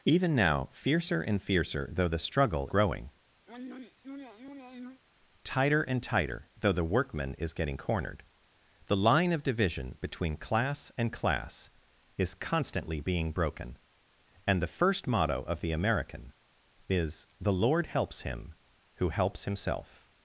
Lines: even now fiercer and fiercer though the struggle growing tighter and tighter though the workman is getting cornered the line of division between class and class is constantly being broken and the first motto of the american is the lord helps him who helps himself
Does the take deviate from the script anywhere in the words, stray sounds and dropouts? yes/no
yes